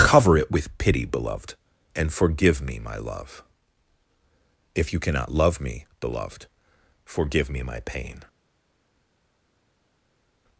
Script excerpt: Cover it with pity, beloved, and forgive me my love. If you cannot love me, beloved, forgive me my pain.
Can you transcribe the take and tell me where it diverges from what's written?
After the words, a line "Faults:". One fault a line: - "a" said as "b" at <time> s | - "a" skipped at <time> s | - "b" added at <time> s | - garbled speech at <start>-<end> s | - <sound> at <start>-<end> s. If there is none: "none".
Cover it with pity, beloved, and forgive me my love. If you cannot love me, beloved, forgive me my pain.
Faults:
none